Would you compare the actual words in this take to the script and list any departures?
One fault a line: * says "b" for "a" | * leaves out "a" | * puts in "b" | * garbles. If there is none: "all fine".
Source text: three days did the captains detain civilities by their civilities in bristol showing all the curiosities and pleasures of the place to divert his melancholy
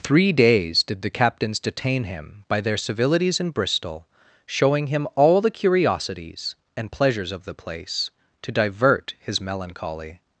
* says "him" for "civilities"
* puts in "him"